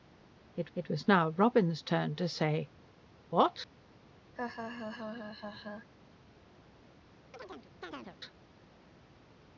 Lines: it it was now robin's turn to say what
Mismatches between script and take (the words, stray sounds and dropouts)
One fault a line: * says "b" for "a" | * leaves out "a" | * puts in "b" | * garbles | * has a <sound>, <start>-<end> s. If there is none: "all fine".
* has a laugh, 4.4-5.9 s
* has a chirp, 7.3-8.2 s